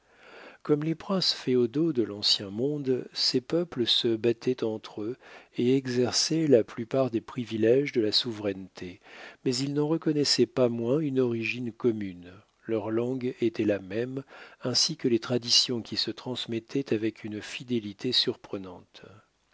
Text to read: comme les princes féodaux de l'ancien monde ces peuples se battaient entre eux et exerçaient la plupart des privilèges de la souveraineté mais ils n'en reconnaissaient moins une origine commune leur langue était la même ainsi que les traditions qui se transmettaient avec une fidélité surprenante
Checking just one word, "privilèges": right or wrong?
right